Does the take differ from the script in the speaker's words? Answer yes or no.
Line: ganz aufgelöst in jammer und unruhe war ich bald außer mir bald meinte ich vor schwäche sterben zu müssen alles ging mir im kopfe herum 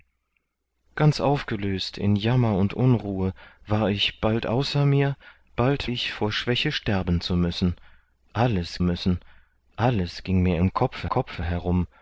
yes